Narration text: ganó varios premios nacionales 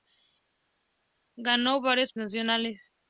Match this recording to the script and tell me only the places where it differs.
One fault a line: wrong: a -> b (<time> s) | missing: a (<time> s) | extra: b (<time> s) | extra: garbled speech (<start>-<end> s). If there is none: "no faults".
missing: premios (2.1 s)